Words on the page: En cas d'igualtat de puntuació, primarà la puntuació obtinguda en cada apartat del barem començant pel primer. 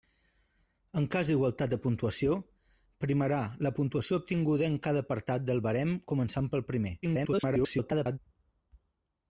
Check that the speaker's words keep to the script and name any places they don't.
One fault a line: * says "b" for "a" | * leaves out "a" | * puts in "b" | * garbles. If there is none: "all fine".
* garbles